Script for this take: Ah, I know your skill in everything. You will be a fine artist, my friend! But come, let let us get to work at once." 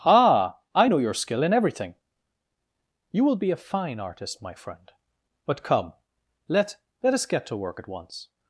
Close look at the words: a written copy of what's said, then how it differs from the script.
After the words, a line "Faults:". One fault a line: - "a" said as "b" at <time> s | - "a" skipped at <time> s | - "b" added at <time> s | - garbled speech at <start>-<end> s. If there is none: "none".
Ah, I know your skill in everything. You will be a fine artist, my friend! But come, let let us get to work at once."
Faults:
none